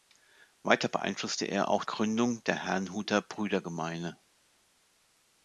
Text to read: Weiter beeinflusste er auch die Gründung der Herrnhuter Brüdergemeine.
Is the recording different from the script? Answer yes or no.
yes